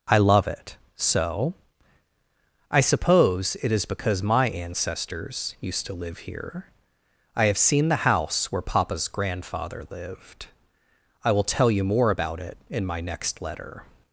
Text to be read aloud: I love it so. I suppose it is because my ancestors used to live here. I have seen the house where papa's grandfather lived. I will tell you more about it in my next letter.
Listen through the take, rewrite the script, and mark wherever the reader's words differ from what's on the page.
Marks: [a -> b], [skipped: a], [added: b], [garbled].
I love it so. I suppose it is because my ancestors used to live here. I have seen the house where papa's grandfather lived. I will tell you more about it in my next letter.